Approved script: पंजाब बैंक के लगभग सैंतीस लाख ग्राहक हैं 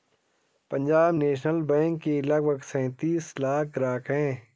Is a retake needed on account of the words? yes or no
yes